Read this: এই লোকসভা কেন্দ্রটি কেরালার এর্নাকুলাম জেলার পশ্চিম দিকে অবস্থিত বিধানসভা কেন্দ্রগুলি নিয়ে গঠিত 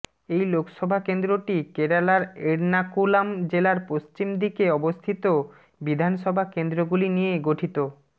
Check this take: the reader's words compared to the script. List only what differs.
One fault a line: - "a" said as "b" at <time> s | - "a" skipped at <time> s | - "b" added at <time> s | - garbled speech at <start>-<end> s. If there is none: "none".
none